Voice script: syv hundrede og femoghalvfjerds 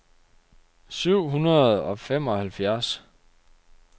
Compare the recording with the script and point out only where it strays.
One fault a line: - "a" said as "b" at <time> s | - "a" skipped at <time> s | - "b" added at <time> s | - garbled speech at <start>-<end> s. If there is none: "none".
none